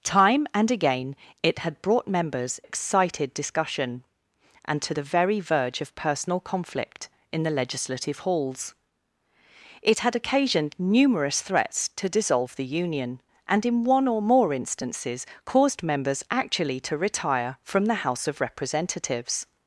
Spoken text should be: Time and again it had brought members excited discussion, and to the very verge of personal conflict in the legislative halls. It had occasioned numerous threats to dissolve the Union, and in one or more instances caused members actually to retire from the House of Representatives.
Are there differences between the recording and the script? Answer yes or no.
no